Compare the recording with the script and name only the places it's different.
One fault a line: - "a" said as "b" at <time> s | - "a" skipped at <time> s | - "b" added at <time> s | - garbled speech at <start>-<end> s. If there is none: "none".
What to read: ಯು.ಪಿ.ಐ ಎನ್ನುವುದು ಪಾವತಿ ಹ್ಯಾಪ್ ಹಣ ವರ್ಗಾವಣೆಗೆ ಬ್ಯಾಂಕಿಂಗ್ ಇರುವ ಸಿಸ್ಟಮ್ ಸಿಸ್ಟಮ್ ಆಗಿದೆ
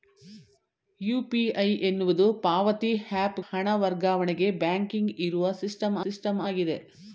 none